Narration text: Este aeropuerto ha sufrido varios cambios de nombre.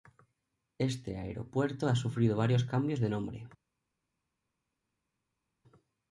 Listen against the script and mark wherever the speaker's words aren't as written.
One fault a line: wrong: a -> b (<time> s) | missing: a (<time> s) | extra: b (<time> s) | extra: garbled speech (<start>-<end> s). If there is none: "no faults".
no faults